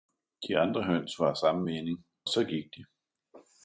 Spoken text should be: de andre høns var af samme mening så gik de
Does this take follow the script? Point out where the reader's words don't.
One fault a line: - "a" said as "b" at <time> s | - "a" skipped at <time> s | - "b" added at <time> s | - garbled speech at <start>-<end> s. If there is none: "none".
none